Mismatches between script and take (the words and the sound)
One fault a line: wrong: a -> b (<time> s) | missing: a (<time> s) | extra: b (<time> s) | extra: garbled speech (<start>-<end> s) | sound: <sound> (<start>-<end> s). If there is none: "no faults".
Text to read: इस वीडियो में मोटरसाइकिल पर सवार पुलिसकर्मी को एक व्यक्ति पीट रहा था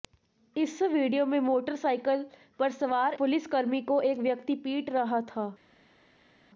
no faults